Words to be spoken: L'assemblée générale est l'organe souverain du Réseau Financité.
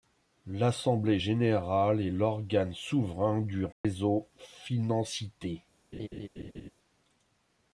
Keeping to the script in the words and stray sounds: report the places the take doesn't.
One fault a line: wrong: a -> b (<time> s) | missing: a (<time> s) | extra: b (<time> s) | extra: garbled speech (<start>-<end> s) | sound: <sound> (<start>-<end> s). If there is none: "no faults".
sound: dropout (3.7-3.8 s)
sound: laugh (5.9-6.7 s)